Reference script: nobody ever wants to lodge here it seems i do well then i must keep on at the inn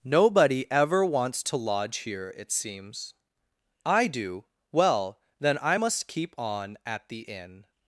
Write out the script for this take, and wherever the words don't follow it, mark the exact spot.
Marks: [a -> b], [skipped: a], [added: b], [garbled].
nobody ever wants to lodge here it seems i do well then i must keep on at the inn